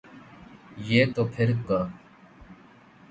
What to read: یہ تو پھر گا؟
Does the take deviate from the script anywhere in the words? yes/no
no